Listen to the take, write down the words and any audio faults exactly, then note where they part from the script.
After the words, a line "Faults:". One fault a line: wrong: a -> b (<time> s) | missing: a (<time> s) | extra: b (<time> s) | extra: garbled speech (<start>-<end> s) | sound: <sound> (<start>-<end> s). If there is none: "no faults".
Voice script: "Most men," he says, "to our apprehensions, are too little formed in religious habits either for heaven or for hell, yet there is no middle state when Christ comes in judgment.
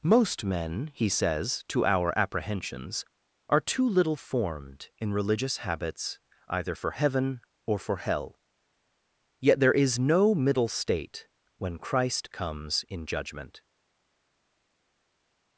"Most men," he says, "to our apprehensions, are too little formed in religious habits either for heaven or for hell, yet there is no middle state when Christ comes in judgment.
Faults:
no faults